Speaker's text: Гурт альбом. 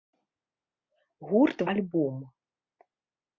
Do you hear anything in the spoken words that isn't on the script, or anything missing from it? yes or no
no